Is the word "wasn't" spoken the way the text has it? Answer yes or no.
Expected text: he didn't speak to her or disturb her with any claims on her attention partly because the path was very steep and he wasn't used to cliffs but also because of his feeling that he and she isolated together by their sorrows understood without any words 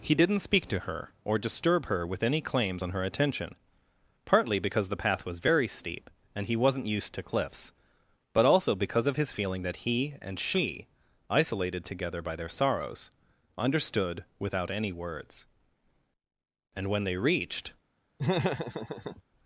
yes